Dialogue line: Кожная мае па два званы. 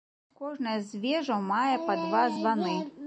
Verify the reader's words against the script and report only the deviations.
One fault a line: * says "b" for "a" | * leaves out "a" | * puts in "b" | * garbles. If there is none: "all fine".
* puts in "з вежаў"